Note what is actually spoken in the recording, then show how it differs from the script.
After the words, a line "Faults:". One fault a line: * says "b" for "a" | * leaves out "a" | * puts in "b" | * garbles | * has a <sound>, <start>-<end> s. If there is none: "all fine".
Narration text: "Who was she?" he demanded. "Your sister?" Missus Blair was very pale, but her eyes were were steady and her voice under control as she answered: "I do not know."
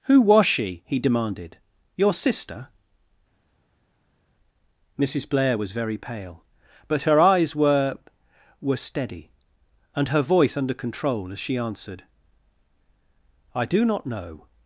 "Who was she?" he demanded. "Your sister?" Missus Blair was very pale, but her eyes were were steady and her voice under control as she answered: "I do not know."
Faults:
all fine